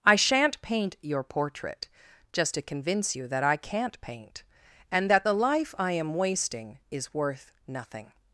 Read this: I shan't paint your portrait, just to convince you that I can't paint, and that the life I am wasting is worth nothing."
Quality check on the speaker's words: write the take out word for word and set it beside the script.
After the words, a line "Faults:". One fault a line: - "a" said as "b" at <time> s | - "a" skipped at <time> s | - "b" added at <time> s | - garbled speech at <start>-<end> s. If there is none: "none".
I shan't paint your portrait, just to convince you that I can't paint, and that the life I am wasting is worth nothing."
Faults:
none